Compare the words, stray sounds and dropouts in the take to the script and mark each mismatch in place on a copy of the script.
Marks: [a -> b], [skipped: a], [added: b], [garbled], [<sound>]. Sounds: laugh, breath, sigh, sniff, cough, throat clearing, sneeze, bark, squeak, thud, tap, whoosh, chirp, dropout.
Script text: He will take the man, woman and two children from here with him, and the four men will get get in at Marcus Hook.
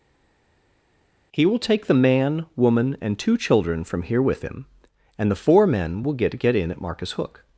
He will take the man, woman and two children from here with him, and the four men will get get in at Marcus Hook.